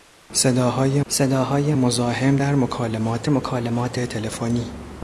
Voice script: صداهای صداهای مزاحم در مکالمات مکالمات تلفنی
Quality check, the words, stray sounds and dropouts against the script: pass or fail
pass